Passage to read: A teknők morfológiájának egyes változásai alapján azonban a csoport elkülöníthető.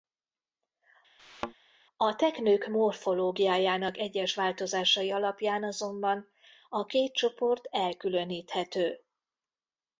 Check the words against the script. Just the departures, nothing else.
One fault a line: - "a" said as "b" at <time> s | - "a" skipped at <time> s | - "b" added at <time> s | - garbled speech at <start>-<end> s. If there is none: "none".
- "két" added at 6.8 s